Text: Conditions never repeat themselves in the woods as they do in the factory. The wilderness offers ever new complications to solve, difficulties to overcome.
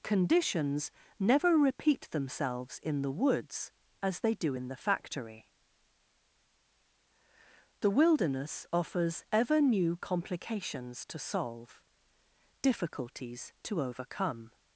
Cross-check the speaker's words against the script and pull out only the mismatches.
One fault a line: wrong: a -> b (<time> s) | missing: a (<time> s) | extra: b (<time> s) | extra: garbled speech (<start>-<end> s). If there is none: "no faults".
no faults